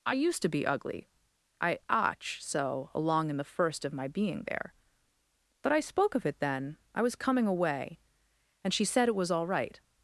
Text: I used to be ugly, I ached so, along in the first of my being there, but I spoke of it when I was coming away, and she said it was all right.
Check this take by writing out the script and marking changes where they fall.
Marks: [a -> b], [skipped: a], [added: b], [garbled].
I used to be ugly, I [ached -> ach] so, along in the first of my being there, but I spoke of it [when -> then] I was coming away, and she said it was all right.